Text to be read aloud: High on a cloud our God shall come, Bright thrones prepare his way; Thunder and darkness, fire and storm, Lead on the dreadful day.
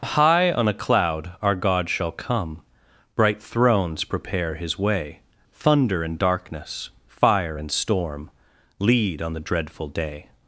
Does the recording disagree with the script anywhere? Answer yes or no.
no